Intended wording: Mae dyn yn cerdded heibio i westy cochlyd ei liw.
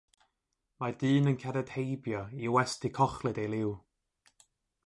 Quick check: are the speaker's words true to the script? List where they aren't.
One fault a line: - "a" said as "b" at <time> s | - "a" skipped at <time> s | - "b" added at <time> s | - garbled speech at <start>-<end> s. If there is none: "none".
none